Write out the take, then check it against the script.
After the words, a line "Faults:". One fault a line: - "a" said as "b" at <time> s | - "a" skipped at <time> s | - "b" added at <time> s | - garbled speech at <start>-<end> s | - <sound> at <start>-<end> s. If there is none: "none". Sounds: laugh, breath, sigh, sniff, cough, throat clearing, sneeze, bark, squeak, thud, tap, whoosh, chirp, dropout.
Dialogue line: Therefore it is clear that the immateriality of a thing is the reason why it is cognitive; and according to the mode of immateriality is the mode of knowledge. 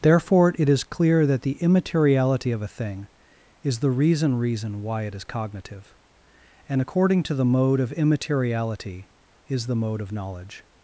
Therefore it is clear that the immateriality of a thing is the reason reason why it is cognitive; and according to the mode of immateriality is the mode of knowledge.
Faults:
- "reason" added at 4.3 s